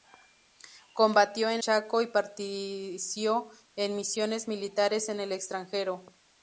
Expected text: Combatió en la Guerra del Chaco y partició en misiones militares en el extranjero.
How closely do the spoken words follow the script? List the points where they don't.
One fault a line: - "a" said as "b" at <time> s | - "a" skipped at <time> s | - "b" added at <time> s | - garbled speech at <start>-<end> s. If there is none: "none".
- "la Guerra del" skipped at 1.6 s